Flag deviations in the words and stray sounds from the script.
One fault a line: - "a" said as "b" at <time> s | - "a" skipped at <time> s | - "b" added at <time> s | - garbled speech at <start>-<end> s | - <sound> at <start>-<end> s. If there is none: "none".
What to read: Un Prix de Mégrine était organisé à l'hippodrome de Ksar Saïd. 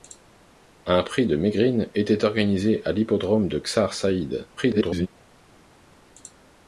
- garbled speech at 4.6-5.1 s